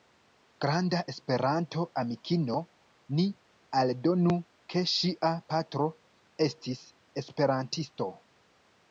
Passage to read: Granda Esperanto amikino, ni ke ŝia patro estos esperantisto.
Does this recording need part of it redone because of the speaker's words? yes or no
yes